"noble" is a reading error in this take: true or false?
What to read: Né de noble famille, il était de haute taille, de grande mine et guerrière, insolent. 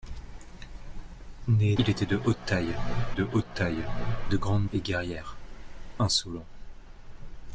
true